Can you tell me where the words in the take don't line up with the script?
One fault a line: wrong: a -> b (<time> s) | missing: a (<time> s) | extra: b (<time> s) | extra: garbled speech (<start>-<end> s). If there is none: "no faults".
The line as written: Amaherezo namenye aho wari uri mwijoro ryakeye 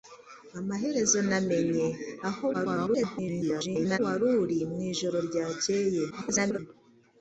extra: garbled speech (2.5-4.0 s)
extra: garbled speech (6.1-6.6 s)